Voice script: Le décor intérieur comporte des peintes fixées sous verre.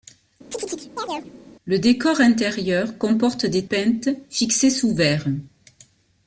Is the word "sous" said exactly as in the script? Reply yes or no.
yes